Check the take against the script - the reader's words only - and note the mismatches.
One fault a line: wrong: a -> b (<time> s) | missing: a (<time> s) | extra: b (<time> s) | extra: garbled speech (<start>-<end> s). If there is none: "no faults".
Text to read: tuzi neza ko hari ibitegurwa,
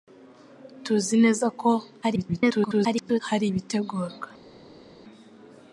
extra: garbled speech (2.0-3.2 s)